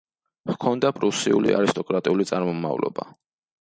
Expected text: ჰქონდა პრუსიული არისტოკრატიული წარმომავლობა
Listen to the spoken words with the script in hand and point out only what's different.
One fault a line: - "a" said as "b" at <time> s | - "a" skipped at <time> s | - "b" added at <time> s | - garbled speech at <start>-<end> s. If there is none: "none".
none